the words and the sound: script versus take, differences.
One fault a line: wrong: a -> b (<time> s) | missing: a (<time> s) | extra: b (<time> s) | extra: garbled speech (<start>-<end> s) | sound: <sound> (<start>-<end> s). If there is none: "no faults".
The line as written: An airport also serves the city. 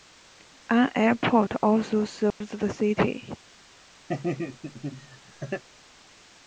sound: dropout (2.3-2.4 s)
sound: laugh (4.1-5.6 s)